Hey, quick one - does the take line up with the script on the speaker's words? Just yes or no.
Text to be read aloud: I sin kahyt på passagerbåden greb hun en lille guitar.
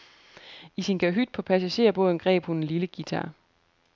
yes